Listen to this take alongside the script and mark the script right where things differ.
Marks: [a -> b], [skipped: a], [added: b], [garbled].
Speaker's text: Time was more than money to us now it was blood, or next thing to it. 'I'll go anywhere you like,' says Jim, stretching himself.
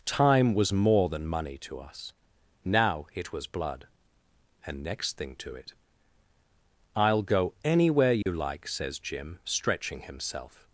Time was more than money to us now it was blood, [or -> and] next thing to it. 'I'll go anywhere you like,' says Jim, stretching himself.